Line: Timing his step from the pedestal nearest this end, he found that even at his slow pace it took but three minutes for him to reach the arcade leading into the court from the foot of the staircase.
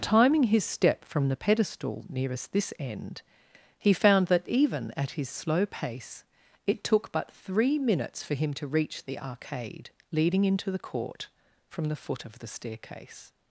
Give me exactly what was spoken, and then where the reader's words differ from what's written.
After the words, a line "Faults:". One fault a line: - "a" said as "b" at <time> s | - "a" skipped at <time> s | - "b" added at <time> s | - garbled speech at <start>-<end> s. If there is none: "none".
Timing his step from the pedestal nearest this end, he found that even at his slow pace it took but three minutes for him to reach the arcade leading into the court from the foot of the staircase.
Faults:
none